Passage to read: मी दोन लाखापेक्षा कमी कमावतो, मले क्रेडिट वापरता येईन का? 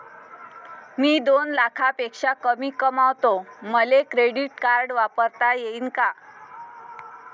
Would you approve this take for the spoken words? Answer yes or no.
no